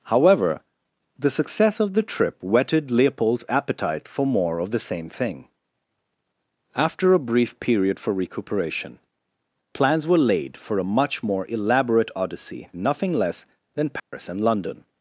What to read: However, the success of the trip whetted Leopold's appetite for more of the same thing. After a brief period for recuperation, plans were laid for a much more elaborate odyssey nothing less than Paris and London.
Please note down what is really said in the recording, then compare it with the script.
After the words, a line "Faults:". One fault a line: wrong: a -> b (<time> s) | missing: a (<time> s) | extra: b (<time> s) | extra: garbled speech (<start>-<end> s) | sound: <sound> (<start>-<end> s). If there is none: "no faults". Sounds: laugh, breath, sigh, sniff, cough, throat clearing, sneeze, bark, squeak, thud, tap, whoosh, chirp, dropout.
However, the success of the trip whetted Leopold's appetite for more of the same thing. After a brief period for recuperation, plans were laid for a much more elaborate odyssey nothing less than Paris and London.
Faults:
sound: dropout (14.0-14.1 s)